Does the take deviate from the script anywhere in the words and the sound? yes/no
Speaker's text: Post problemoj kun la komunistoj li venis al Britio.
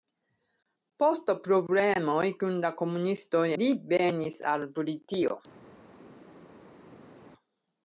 no